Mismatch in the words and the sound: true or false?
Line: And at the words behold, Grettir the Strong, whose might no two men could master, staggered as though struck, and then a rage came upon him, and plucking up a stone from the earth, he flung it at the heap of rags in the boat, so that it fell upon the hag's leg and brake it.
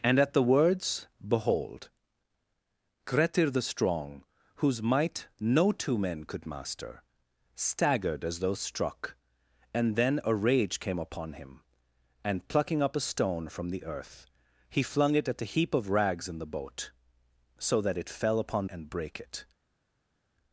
true